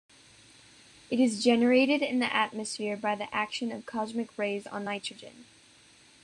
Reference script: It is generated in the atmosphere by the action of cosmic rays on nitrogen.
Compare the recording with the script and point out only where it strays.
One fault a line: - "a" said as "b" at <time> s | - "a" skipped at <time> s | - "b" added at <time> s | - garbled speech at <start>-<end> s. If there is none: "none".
none